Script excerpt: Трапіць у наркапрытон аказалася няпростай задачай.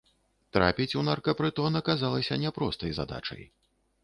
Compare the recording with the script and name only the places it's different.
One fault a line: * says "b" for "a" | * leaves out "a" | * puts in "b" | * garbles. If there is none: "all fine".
all fine